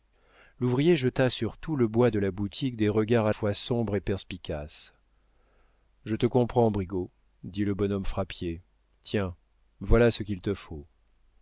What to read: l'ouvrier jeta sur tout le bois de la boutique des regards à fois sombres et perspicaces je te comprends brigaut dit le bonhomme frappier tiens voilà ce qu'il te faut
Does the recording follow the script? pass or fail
pass